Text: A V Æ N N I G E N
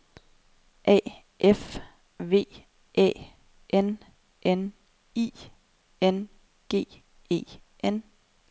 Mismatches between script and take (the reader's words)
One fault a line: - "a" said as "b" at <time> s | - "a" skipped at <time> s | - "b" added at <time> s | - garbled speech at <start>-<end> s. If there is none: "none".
- "F" added at 1.4 s
- "N" added at 6.0 s